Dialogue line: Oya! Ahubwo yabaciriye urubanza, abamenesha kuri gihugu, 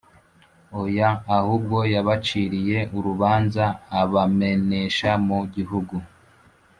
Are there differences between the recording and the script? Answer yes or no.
yes